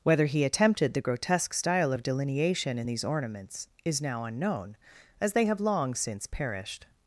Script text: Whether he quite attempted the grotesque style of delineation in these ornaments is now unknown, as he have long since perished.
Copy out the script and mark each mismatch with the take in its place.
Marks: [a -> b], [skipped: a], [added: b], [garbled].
Whether he [skipped: quite] attempted the grotesque style of delineation in these ornaments is now unknown, as [he -> they] have long since perished.